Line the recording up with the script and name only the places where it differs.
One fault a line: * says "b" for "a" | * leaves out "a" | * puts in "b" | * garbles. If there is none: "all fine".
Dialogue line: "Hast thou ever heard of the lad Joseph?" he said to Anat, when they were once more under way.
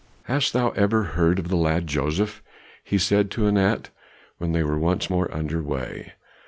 all fine